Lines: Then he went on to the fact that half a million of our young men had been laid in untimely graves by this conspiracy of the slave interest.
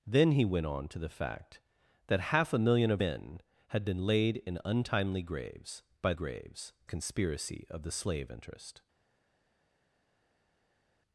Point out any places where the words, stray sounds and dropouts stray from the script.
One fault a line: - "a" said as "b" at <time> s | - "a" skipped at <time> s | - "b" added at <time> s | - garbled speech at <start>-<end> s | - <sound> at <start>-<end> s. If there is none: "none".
- "our young" skipped at 3.0 s
- "this" said as "graves" at 6.1 s